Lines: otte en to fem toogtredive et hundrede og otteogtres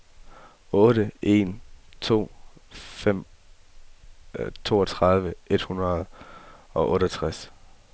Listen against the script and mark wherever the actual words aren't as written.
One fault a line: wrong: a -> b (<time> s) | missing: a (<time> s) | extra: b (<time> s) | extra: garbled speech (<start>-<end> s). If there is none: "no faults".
no faults